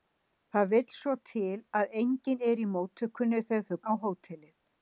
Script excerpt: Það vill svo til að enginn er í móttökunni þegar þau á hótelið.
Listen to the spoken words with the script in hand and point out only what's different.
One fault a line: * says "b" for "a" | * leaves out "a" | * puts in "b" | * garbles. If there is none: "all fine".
all fine